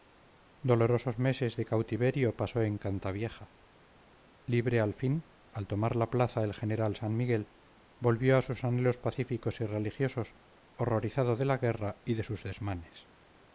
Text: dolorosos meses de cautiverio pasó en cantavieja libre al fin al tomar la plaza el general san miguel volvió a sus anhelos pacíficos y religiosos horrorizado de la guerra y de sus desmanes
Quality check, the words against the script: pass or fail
pass